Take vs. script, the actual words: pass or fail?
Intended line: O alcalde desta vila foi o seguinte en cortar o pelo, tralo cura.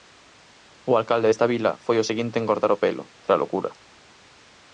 pass